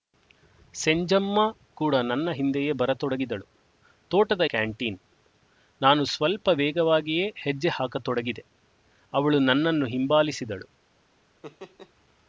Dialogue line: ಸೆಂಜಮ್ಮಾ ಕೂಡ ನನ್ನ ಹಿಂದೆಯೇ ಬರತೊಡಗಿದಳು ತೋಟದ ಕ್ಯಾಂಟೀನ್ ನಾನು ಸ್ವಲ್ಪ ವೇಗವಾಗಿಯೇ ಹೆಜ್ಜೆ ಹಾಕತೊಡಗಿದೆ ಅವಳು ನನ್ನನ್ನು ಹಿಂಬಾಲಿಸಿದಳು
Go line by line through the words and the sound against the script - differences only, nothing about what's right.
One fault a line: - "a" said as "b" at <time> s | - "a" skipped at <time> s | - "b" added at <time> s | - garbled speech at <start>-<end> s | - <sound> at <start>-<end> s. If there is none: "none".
- laugh at 11.4-11.9 s